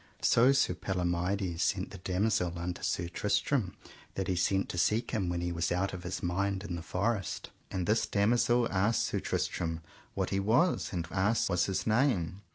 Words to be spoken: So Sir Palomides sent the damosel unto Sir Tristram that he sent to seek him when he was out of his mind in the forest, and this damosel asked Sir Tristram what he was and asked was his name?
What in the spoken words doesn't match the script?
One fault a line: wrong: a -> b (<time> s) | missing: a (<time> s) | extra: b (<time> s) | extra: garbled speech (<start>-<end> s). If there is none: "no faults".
no faults